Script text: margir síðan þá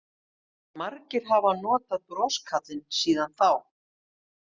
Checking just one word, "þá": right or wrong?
right